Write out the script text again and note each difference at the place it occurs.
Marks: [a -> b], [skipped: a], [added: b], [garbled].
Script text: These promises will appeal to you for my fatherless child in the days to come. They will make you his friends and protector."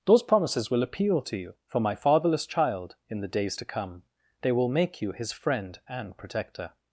[These -> Those] promises will appeal to you for my fatherless child in the days to come. They will make you his [friends -> friend] and protector."